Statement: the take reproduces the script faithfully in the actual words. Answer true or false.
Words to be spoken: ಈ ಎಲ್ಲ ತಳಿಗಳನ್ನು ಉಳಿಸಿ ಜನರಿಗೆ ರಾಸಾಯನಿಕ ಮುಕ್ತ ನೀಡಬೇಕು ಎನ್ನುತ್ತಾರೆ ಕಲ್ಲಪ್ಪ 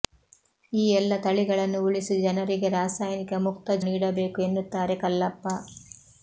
true